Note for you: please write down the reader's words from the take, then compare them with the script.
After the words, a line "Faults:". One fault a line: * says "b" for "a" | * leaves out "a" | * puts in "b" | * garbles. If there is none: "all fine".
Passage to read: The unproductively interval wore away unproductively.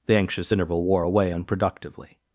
The anxious interval wore away unproductively.
Faults:
* says "anxious" for "unproductively"